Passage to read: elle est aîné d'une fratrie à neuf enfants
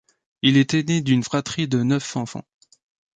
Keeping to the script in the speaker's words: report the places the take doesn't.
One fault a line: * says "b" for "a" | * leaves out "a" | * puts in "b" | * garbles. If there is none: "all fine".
* says "il" for "elle"
* says "de" for "à"